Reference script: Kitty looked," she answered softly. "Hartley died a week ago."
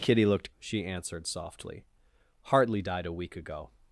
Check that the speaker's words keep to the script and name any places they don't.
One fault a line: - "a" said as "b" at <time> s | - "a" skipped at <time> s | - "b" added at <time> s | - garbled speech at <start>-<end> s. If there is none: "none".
none